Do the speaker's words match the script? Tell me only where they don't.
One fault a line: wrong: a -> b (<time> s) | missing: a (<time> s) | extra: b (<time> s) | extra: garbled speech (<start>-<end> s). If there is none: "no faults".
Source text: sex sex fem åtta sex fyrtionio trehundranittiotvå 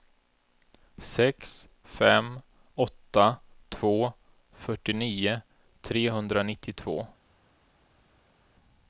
missing: sex (1.7 s)
wrong: sex -> två (3.7 s)